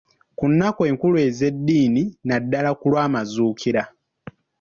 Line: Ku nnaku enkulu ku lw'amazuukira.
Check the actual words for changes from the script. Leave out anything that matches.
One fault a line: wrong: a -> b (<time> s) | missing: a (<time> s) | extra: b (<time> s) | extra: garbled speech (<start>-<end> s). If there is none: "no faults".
extra: ez'eddiini naddala (1.3 s)